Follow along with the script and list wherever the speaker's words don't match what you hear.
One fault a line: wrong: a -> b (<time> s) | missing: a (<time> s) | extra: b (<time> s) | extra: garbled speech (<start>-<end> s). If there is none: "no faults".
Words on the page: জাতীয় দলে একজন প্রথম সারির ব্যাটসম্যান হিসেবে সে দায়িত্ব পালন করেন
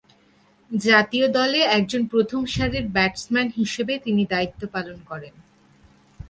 wrong: সে -> তিনি (4.0 s)